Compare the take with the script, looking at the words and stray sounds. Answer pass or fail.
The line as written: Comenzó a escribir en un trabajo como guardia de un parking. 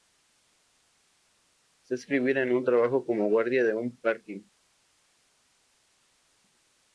pass